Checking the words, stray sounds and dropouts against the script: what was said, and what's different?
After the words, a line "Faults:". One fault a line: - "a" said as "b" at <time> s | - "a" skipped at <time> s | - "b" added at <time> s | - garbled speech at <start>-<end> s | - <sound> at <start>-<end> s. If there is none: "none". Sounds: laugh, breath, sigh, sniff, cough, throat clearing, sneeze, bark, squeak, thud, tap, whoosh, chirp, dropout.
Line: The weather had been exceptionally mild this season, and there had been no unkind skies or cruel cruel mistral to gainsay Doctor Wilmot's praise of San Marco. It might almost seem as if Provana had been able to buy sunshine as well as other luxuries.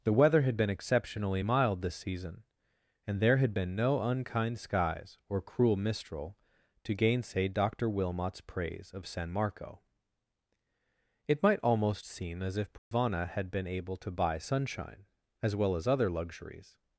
The weather had been exceptionally mild this season, and there had been no unkind skies or cruel mistral to gainsay Doctor Wilmot's praise of San Marco. It might almost seem as if Provana had been able to buy sunshine as well as other luxuries.
Faults:
- "cruel" skipped at 5.8 s
- dropout at 12.8-12.9 s